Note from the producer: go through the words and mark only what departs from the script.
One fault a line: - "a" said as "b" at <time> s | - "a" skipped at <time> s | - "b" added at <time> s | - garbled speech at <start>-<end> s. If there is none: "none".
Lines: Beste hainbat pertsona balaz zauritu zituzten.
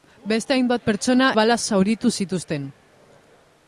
none